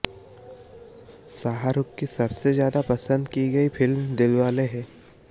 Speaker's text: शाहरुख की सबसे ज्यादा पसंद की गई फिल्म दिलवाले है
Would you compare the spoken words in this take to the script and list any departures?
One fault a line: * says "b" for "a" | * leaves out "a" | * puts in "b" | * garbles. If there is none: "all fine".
all fine